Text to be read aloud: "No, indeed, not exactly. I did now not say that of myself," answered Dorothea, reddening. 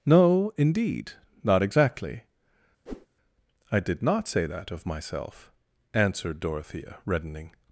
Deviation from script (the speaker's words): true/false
true